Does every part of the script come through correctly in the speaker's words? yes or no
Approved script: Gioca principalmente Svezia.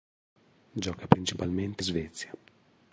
yes